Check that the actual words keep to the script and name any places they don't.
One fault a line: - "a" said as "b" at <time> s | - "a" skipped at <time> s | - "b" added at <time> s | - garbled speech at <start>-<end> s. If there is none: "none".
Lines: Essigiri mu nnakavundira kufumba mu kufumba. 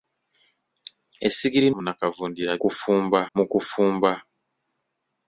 none